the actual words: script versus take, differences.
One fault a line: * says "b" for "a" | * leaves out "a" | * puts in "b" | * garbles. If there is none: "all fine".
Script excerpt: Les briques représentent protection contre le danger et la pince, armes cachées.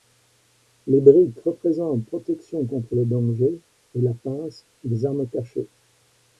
* puts in "les"